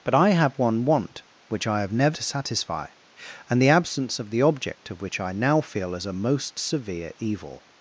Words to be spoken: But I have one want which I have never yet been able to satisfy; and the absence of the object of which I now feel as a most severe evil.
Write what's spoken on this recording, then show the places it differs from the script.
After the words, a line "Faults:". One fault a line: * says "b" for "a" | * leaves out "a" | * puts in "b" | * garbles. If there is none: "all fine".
But I have one want which I have never to satisfy; and the absence of the object of which I now feel as a most severe evil.
Faults:
* leaves out "yet been able"